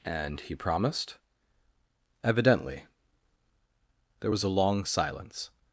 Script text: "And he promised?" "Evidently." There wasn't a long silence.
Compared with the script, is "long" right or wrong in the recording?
right